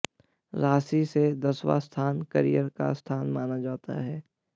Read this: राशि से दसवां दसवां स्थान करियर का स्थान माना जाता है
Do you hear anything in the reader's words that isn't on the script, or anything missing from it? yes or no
yes